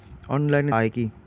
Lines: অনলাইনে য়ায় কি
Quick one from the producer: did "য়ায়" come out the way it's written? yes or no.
yes